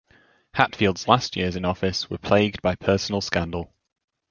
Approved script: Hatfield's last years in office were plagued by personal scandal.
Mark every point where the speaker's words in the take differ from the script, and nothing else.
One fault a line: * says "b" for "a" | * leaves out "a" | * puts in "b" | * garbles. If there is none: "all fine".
all fine